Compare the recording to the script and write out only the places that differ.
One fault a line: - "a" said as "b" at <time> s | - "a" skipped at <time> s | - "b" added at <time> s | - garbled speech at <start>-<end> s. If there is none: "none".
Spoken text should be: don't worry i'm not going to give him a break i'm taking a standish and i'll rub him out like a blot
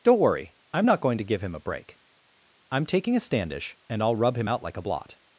none